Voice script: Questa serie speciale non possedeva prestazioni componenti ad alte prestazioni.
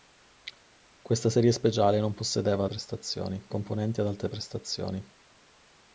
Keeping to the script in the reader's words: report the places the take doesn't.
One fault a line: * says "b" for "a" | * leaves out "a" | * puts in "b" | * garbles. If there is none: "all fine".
all fine